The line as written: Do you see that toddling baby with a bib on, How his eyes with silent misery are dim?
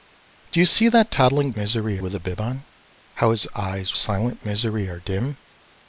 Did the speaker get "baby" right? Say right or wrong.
wrong